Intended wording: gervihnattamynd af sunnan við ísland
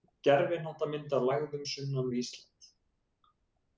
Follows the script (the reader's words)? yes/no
no